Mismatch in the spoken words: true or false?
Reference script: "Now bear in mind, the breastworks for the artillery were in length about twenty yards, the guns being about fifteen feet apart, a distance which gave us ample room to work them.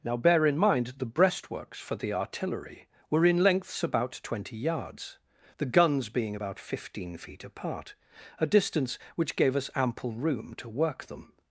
true